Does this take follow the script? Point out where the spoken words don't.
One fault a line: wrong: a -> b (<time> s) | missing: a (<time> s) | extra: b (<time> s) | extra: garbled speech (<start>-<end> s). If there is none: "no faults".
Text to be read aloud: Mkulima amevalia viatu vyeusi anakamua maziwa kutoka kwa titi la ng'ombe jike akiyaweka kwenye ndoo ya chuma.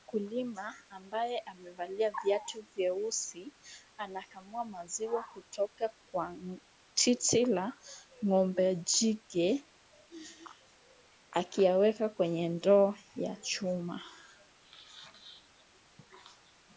extra: ambaye (0.9 s)